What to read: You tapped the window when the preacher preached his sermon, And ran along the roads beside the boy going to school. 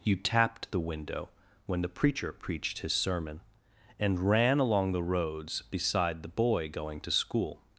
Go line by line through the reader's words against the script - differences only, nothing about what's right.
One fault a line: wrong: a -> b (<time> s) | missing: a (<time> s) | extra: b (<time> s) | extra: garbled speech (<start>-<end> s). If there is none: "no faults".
no faults